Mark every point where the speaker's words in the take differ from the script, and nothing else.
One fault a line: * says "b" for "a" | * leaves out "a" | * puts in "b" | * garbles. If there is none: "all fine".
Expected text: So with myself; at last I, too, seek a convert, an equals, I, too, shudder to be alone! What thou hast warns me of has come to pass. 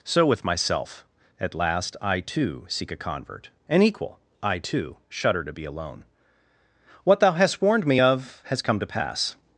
* says "equal" for "equals"
* says "warned" for "warns"